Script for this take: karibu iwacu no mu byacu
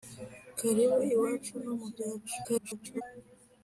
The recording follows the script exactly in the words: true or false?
false